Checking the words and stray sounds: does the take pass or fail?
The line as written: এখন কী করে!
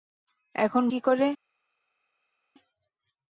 pass